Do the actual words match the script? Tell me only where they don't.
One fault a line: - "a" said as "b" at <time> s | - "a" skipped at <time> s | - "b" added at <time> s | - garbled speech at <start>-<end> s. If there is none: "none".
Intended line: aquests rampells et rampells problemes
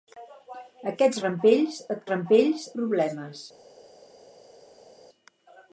none